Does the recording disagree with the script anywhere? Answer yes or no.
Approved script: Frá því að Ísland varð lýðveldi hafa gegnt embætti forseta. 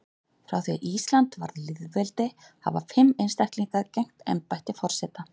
yes